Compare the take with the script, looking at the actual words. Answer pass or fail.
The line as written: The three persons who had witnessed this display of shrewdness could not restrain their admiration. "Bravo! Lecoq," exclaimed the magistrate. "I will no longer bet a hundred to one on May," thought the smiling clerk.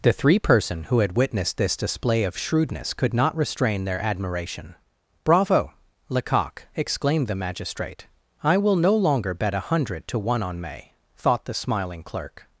fail